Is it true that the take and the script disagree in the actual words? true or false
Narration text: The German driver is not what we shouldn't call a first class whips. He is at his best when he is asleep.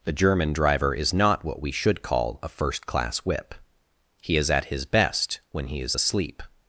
true